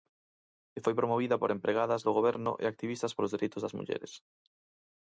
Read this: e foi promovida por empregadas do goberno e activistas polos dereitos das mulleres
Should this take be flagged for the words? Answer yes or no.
no